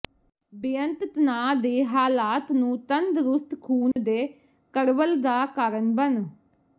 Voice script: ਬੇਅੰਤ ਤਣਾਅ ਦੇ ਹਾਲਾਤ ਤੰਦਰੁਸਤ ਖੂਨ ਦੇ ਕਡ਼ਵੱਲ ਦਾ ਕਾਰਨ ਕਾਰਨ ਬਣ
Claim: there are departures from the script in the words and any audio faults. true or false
true